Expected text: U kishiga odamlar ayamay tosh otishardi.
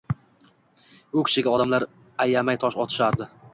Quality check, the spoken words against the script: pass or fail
pass